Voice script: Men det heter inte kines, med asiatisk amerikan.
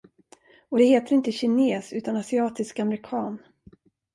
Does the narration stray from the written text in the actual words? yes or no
yes